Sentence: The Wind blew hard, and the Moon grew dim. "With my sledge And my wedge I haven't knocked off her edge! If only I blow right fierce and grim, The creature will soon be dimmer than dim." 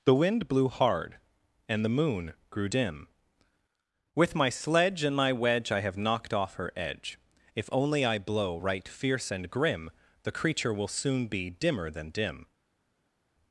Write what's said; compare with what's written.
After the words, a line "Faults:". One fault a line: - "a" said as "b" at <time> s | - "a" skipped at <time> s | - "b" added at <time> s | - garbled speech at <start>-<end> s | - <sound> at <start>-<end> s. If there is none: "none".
The Wind blew hard, and the Moon grew dim. "With my sledge And my wedge I have knocked off her edge! If only I blow right fierce and grim, The creature will soon be dimmer than dim."
Faults:
- "haven't" said as "have" at 5.8 s